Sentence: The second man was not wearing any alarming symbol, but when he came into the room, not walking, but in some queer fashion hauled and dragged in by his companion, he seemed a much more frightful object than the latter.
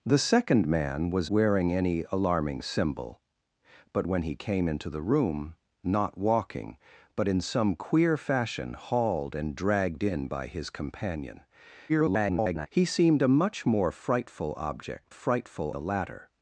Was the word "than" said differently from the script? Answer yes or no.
yes